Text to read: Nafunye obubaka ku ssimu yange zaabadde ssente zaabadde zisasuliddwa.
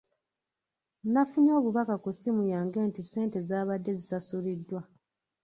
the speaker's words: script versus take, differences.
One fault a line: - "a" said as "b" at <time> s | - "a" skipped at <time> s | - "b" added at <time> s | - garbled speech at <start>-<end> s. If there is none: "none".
- "zaabadde" said as "nti" at 2.9 s